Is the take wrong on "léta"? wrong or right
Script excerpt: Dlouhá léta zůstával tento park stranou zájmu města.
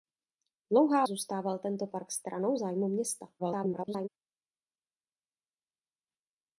wrong